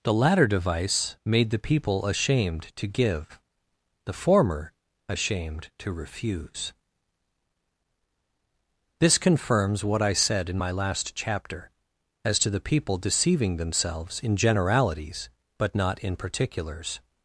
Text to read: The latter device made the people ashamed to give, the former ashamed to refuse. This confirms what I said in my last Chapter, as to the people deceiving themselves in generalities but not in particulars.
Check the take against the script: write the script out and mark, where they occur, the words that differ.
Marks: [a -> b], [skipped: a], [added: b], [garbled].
The latter device made the people ashamed to give, the former ashamed to refuse. This confirms what I said in my last Chapter, as to the people deceiving themselves in generalities but not in particulars.